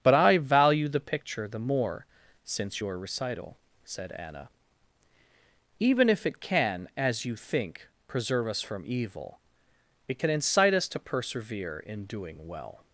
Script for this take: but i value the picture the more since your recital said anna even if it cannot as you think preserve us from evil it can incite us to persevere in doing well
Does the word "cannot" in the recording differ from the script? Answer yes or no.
yes